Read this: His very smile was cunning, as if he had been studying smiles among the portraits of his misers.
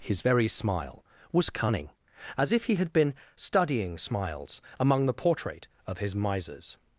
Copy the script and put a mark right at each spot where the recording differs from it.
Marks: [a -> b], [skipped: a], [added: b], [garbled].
His very smile was cunning, as if he had been studying smiles among the [portraits -> portrait] of his misers.